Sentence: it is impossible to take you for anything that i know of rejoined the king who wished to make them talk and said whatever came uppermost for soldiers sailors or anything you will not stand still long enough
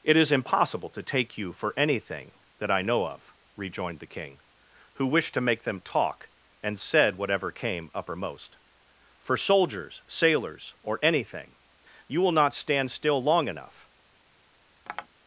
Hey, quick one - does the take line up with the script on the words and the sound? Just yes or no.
no